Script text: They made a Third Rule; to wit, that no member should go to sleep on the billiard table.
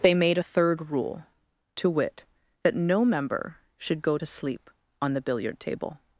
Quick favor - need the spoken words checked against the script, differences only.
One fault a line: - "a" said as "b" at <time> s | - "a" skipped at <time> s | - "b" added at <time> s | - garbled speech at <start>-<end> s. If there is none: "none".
none